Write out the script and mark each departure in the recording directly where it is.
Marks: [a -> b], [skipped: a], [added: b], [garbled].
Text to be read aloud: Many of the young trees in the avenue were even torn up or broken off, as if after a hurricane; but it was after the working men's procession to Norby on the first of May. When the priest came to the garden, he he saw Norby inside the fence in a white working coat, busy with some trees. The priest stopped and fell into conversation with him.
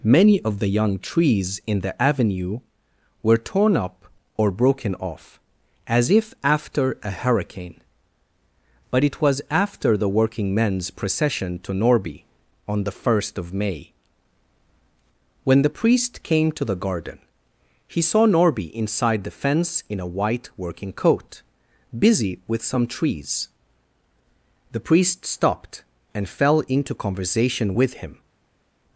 Many of the young trees in the avenue were [skipped: even] torn up or broken off, as if after a hurricane; but it was after the working men's procession to Norby on the first of May. When the priest came to the garden, he [skipped: he] saw Norby inside the fence in a white working coat, busy with some trees. The priest stopped and fell into conversation with him.